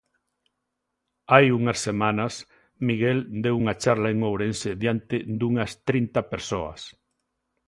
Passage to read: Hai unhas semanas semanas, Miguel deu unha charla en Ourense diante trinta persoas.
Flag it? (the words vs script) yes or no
yes